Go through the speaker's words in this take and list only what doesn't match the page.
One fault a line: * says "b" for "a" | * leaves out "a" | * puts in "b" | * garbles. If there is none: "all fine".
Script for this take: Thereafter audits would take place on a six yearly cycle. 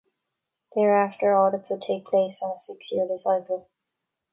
all fine